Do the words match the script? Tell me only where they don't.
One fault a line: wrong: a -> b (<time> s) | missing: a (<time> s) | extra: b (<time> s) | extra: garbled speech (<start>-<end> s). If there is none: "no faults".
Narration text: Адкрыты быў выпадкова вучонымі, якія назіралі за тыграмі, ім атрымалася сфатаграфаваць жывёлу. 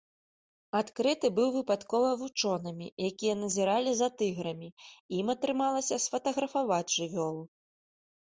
no faults